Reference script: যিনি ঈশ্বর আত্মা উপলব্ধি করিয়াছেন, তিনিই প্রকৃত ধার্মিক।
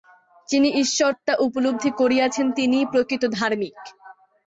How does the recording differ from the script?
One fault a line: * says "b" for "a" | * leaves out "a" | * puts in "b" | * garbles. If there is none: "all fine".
all fine